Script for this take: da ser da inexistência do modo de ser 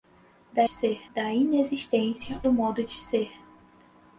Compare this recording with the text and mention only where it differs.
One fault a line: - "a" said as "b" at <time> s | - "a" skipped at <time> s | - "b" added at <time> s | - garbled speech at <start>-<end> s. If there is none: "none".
none